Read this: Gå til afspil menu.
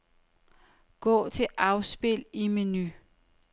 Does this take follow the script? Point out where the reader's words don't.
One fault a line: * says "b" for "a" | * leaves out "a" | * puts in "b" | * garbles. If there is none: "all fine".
* puts in "i"